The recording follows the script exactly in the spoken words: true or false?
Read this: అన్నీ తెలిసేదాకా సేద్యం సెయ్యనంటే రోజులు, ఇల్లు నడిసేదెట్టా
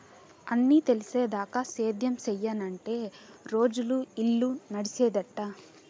true